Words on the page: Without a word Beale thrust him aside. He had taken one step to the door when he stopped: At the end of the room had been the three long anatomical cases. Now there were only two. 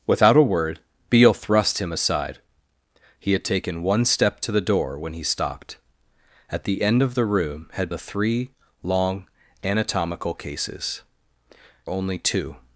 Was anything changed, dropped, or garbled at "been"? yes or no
yes